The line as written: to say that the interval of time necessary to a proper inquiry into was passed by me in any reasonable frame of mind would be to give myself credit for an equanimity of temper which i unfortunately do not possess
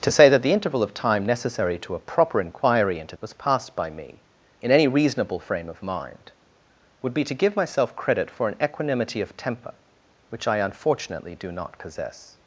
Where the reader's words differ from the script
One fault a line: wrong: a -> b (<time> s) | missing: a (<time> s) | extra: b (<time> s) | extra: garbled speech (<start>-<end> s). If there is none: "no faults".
no faults